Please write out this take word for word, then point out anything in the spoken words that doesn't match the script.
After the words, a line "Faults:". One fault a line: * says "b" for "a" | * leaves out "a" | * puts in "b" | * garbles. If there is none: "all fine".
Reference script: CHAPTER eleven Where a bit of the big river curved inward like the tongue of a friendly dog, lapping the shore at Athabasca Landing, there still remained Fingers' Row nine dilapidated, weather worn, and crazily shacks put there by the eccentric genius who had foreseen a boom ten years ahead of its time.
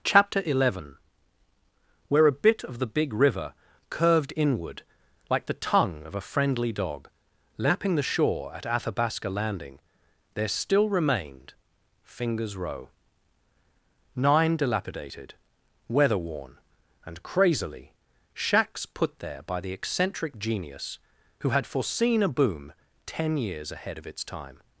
CHAPTER eleven Where a bit of the big river curved inward like the tongue of a friendly dog, lapping the shore at Athabasca Landing, there still remained Fingers' Row nine dilapidated, weather worn, and crazily shacks put there by the eccentric genius who had foreseen a boom ten years ahead of its time.
Faults:
all fine